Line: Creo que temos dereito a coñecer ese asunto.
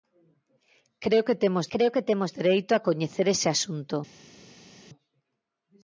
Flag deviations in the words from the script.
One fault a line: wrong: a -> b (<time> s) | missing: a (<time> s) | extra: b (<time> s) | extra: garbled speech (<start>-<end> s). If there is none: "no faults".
extra: creo que temos (1.7 s)